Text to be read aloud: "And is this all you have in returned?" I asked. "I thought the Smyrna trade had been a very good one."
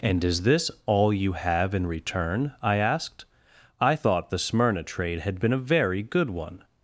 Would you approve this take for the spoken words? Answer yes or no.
no